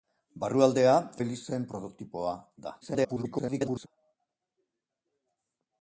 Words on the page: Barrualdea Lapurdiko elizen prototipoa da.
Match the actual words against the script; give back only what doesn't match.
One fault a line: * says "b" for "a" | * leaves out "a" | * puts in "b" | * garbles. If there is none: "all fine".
* leaves out "Lapurdiko"
* garbles